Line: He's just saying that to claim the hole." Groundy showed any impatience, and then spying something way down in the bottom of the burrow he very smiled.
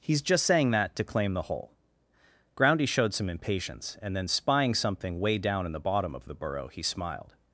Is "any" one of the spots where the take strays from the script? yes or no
yes